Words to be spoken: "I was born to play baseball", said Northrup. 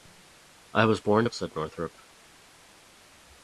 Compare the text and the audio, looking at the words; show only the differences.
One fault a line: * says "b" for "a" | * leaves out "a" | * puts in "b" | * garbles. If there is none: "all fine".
* leaves out "play baseball"